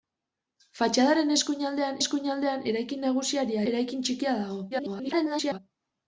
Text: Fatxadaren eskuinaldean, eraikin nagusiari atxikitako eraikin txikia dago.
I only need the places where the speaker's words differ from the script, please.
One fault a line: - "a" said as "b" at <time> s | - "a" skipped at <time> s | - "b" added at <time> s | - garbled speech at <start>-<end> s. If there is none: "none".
- "eskuinaldean" added at 2.0 s
- "atxikitako" skipped at 3.6 s
- garbled speech at 4.7-5.6 s